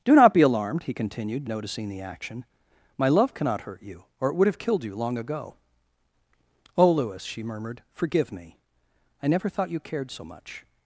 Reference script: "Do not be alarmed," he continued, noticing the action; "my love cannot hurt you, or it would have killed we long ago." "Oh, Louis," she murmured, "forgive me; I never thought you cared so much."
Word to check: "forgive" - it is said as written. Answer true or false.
true